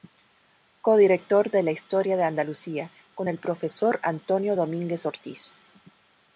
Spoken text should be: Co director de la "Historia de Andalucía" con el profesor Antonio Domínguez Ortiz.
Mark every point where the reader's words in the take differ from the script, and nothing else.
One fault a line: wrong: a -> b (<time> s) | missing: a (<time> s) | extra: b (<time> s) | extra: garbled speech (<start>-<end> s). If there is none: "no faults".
no faults